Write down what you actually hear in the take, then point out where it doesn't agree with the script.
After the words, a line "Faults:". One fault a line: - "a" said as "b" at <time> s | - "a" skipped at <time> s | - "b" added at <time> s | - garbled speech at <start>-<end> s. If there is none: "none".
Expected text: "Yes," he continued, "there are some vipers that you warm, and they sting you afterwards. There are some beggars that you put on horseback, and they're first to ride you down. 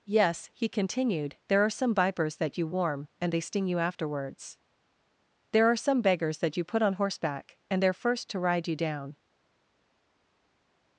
"Yes," he continued, "there are some vipers that you warm, and they sting you afterwards. There are some beggars that you put on horseback, and they're first to ride you down.
Faults:
none